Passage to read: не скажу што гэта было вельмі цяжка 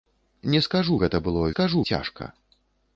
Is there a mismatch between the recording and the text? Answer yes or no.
yes